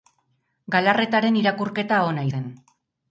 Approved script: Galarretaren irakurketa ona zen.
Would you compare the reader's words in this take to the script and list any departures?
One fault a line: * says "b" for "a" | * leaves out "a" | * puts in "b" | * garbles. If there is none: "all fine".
all fine